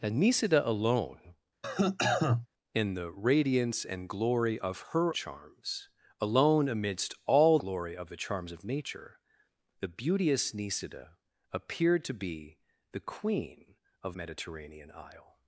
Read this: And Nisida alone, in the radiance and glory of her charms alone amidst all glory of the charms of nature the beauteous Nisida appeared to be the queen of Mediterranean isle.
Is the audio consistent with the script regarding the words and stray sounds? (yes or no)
no